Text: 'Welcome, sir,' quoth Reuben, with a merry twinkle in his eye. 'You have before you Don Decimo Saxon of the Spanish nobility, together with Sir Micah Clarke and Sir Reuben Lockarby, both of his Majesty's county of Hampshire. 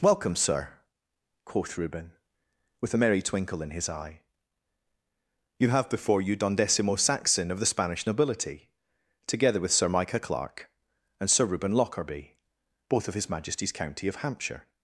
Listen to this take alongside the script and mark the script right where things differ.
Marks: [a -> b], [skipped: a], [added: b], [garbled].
'Welcome, sir,' quoth Reuben, with a merry twinkle in his eye. 'You have before you Don Decimo Saxon of the Spanish nobility, together with Sir Micah Clarke and Sir Reuben Lockarby, both of his Majesty's county of Hampshire.